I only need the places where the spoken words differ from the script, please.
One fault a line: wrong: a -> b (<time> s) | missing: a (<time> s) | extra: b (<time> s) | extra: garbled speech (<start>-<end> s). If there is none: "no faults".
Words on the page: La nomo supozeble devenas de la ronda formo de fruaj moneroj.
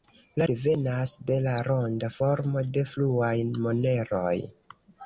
missing: nomo supozeble (0.5 s)